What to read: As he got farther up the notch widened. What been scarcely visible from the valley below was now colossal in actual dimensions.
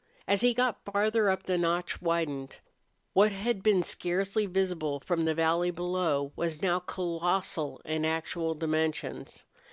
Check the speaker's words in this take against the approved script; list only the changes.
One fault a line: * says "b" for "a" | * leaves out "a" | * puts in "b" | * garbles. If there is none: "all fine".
* puts in "had"